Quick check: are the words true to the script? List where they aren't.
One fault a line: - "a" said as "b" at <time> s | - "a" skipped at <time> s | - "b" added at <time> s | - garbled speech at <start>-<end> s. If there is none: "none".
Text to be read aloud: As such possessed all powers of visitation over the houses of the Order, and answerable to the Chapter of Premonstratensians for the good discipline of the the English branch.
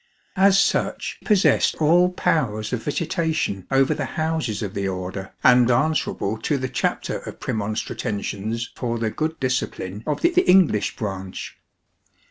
none